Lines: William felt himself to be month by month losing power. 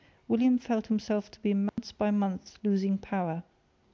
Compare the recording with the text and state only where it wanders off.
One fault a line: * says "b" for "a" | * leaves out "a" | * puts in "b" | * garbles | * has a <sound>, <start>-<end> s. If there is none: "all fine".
* has a dropout, 1.7-1.8 s